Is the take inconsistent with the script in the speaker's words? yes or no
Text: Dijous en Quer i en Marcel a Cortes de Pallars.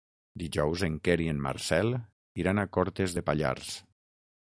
yes